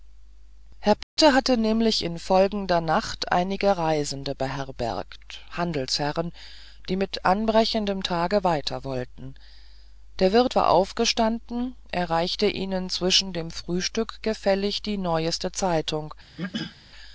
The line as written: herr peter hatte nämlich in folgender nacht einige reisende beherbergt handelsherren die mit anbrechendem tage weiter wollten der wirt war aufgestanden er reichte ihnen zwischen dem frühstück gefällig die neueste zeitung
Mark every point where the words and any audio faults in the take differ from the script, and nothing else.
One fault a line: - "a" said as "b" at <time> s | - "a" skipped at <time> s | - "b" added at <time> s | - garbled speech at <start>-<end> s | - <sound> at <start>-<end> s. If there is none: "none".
- dropout at 1.0-1.2 s
- throat clearing at 16.4-16.8 s